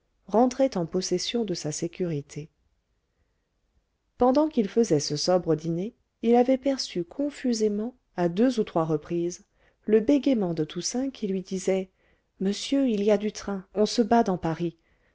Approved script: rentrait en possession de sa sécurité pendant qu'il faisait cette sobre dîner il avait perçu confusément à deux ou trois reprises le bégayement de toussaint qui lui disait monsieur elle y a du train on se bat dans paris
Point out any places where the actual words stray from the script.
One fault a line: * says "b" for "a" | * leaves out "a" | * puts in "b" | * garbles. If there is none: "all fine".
* says "ce" for "cette"
* says "il" for "elle"